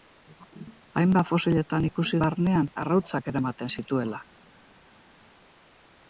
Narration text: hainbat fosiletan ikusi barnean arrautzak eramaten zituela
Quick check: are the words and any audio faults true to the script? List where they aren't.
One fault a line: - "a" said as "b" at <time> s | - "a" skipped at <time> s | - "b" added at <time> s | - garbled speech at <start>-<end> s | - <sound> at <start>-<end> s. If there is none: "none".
none